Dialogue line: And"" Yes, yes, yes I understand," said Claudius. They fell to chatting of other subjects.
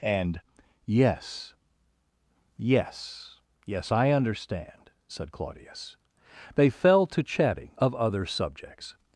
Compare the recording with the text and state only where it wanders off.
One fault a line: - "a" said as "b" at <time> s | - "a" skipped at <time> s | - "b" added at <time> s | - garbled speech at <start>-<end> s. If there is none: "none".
none